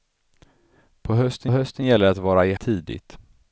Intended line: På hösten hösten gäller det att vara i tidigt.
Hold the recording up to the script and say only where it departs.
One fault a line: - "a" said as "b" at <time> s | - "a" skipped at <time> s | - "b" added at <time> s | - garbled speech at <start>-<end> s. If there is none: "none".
none